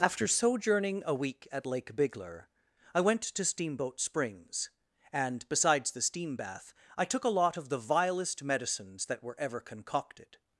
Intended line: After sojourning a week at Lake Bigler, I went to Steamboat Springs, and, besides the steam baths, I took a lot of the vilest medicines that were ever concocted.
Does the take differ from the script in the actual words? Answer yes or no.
yes